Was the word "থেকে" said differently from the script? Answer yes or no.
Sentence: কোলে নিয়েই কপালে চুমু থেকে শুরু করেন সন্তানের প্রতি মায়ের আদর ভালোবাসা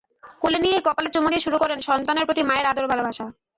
yes